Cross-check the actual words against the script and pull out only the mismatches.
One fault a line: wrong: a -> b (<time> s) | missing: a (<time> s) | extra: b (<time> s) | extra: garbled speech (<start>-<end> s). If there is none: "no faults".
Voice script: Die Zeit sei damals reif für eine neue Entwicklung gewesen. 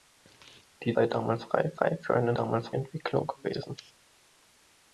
missing: Zeit (1.0 s)
extra: reif (1.8 s)
wrong: neue -> damals (2.3 s)